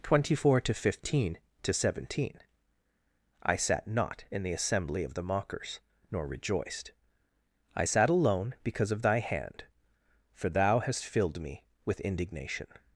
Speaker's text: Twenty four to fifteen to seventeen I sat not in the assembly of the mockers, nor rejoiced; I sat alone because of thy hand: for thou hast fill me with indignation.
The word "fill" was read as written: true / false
false